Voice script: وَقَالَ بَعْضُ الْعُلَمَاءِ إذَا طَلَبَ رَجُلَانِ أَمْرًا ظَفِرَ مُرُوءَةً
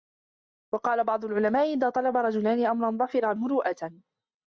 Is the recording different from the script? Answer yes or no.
no